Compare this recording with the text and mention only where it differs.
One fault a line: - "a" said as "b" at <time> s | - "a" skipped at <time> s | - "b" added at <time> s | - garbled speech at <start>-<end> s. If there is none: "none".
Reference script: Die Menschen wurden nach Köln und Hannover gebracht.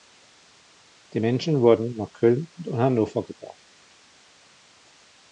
none